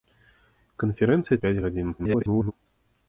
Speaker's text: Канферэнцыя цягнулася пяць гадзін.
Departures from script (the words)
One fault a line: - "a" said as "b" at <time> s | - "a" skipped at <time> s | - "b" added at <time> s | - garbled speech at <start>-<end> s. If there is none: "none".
- "цягнулася" skipped at 1.4 s
- garbled speech at 2.0-2.5 s